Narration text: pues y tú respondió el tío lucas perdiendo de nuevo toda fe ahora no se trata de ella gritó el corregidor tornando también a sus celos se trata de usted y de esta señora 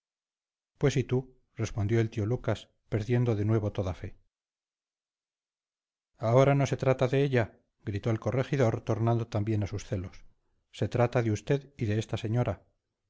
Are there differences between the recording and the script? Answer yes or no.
no